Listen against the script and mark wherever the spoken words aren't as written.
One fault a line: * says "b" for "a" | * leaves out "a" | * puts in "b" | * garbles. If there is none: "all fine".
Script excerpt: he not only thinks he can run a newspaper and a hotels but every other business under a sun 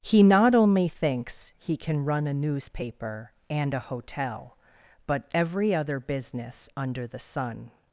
* says "hotel" for "hotels"
* says "the" for "a"